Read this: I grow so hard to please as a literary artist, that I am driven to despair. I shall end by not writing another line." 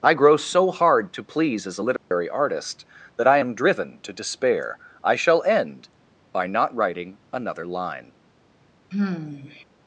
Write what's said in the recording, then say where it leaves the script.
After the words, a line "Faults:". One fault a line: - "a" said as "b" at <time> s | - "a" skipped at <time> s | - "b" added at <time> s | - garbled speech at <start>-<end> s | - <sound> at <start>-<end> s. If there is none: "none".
I grow so hard to please as a literary artist, that I am driven to despair. I shall end by not writing another line."
Faults:
- dropout at 2.0-2.1 s
- sigh at 8.9-9.6 s